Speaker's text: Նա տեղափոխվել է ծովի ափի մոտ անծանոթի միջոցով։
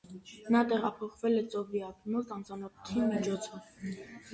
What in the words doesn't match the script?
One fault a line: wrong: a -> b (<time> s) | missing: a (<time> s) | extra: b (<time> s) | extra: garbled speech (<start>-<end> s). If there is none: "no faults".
no faults